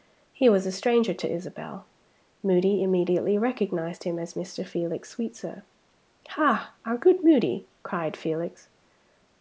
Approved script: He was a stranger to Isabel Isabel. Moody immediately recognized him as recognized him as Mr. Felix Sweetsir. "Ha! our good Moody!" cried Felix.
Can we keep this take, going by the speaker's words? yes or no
no